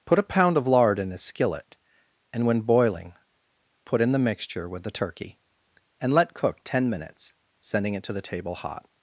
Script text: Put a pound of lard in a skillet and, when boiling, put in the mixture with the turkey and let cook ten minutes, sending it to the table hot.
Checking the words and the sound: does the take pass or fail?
pass